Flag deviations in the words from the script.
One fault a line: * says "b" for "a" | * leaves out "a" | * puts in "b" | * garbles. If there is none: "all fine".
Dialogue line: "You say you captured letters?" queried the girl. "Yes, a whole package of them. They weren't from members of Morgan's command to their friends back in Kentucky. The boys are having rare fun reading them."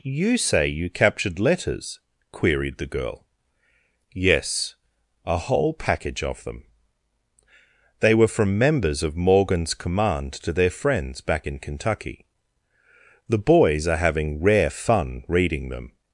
* says "were" for "weren't"